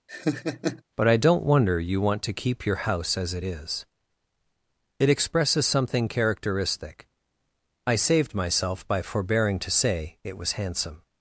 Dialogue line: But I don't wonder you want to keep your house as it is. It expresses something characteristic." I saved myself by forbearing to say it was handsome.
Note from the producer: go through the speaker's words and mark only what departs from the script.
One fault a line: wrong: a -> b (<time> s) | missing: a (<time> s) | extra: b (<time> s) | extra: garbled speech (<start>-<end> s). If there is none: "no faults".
no faults